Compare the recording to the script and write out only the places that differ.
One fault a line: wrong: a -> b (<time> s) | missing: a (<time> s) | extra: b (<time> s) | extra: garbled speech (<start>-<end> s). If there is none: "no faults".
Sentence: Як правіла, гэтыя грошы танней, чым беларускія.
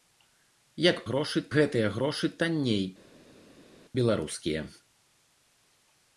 wrong: правіла -> грошы (1.1 s)
missing: чым (2.8 s)